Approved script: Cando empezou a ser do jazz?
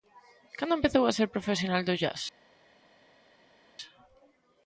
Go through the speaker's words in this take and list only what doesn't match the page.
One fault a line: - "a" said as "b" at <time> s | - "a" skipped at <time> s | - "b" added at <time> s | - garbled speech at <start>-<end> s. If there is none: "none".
- "profesional" added at 1.4 s